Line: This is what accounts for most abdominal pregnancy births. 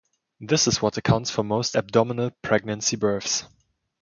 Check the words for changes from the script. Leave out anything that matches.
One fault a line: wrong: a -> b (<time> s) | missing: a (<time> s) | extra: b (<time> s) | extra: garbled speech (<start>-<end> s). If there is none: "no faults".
no faults